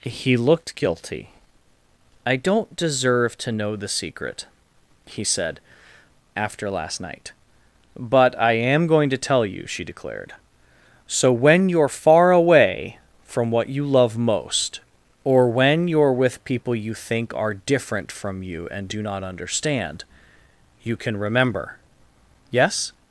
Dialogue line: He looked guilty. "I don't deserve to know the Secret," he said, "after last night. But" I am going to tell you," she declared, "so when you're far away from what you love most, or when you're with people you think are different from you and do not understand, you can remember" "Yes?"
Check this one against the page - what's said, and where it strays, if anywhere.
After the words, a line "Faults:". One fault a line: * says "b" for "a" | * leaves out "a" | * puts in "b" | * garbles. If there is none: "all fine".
He looked guilty. "I don't deserve to know the Secret," he said, "after last night. But" I am going to tell you," she declared, "so when you're far away from what you love most, or when you're with people you think are different from you and do not understand, you can remember" "Yes?"
Faults:
all fine